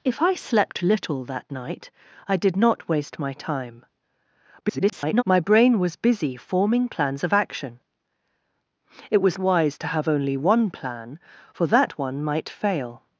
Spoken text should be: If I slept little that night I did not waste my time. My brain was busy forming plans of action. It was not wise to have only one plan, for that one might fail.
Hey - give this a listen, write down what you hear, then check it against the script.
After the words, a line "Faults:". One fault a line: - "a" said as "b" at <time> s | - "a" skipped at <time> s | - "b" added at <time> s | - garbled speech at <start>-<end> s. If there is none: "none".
If I slept little that night I did not waste my time. [garbled] My brain was busy forming plans of action. It was wise to have only one plan, for that one might fail.
Faults:
- garbled speech at 4.6-5.2 s
- "not" skipped at 9.4 s